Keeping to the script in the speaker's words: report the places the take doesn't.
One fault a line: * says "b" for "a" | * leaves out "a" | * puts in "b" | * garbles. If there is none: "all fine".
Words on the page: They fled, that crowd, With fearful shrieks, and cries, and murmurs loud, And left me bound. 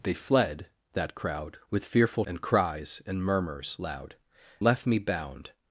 * leaves out "shrieks"
* leaves out "And"